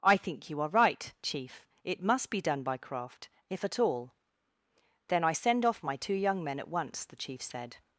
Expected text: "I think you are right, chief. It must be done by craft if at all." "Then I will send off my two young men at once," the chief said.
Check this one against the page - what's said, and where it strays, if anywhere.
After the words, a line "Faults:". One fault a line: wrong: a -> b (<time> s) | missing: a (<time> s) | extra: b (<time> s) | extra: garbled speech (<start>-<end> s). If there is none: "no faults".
"I think you are right, chief. It must be done by craft if at all." "Then I send off my two young men at once," the chief said.
Faults:
missing: will (5.3 s)